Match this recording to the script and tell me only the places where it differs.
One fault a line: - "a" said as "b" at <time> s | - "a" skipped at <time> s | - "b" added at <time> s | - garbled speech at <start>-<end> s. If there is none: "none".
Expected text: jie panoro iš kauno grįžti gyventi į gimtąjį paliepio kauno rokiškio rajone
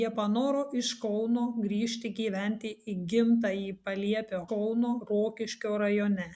none